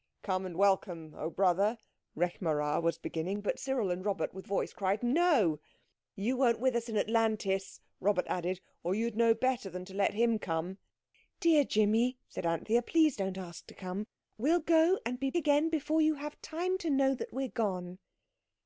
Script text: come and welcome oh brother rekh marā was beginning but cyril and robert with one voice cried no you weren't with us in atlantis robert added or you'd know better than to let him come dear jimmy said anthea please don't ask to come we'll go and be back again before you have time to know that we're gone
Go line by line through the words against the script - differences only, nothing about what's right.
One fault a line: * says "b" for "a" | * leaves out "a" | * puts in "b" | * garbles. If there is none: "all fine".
* leaves out "one"
* leaves out "back"